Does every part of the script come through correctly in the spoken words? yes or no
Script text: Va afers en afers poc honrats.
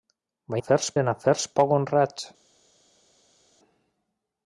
yes